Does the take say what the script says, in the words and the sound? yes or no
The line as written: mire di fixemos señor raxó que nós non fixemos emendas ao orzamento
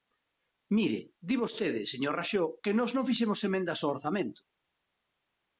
no